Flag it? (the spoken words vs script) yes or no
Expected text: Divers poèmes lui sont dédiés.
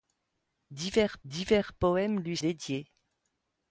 yes